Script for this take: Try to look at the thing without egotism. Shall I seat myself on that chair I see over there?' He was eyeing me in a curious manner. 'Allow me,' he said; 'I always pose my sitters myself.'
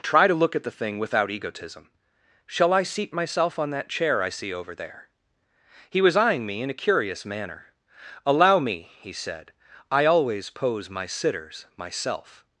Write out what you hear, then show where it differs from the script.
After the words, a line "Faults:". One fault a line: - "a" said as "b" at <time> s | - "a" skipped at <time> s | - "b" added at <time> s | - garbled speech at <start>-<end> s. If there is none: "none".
Try to look at the thing without egotism. Shall I seat myself on that chair I see over there?' He was eyeing me in a curious manner. 'Allow me,' he said; 'I always pose my sitters myself.'
Faults:
none